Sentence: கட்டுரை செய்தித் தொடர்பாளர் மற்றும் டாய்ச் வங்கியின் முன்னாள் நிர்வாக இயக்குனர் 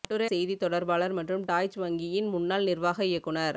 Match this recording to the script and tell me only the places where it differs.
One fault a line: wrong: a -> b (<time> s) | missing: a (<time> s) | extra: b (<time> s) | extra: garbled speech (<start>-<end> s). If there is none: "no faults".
no faults